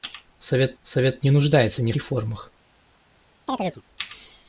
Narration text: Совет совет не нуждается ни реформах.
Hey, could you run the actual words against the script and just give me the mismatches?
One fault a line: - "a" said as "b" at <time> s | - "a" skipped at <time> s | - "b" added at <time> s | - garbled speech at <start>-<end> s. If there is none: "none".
none